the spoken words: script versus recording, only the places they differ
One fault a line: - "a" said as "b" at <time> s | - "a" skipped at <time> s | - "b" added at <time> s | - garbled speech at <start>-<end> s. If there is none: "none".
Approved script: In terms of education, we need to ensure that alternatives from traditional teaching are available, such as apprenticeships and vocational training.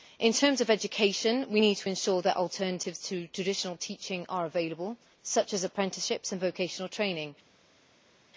- "from" said as "to" at 3.1 s